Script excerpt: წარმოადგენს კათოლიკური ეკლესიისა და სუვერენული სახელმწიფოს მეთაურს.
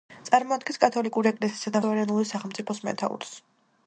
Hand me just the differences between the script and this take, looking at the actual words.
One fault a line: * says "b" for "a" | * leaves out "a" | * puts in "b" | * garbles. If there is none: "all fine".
all fine